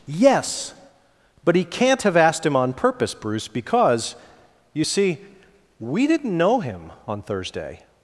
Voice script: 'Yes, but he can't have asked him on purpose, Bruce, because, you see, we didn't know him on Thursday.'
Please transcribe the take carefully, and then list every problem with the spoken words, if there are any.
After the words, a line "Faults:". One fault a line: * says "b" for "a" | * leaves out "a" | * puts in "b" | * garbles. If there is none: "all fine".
'Yes, but he can't have asked him on purpose, Bruce, because, you see, we didn't know him on Thursday.'
Faults:
all fine